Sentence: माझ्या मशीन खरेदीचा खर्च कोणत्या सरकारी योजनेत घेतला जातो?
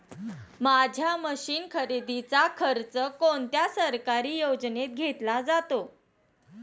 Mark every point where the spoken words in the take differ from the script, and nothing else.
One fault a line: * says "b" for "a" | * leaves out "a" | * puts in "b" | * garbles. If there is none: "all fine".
all fine